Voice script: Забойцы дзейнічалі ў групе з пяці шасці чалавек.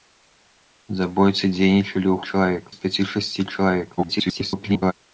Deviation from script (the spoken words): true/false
true